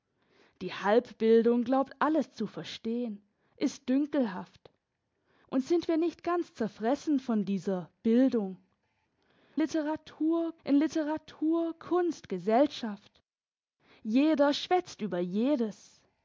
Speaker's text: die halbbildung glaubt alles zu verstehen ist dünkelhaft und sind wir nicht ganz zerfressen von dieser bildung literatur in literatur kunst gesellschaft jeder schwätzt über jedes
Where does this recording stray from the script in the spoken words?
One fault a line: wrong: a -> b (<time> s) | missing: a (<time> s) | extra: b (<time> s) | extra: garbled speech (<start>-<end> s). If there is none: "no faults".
no faults